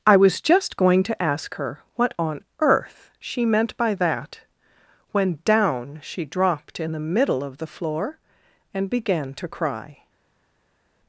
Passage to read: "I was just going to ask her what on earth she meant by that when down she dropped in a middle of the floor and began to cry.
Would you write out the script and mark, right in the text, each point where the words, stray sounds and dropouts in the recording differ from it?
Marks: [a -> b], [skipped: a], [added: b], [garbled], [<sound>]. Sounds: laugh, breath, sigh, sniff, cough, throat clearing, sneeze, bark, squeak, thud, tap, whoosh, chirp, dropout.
"I was just going to ask her what on earth she meant by that when down she dropped in [a -> the] middle of the floor and began to cry.